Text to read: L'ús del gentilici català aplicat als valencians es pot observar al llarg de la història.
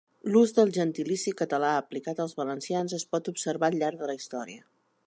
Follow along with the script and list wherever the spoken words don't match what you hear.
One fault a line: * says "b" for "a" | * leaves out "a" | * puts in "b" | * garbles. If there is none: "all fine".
all fine